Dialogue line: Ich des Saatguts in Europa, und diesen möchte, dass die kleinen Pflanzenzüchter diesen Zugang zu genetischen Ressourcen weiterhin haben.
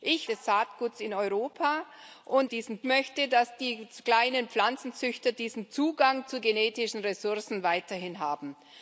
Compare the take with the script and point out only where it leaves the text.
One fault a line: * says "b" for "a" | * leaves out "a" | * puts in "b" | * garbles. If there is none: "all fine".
all fine